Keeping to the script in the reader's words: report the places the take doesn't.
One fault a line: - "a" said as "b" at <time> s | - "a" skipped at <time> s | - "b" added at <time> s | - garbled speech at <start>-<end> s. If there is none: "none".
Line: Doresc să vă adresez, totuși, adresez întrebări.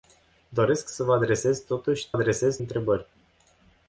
none